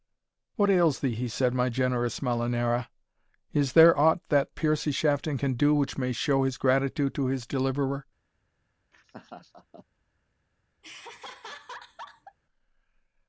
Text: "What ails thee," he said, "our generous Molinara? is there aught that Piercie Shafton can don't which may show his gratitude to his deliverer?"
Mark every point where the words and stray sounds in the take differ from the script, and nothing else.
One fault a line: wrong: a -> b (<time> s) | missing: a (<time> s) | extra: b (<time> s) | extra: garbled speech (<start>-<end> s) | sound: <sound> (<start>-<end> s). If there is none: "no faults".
wrong: our -> my (1.5 s)
wrong: don't -> do (5.6 s)
sound: laugh (8.9-9.9 s)
sound: laugh (10.8-12.4 s)